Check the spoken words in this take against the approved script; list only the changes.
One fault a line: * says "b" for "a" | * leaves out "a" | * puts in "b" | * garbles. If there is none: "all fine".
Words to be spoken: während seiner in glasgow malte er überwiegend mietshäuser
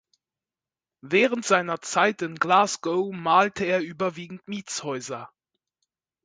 * puts in "zeit"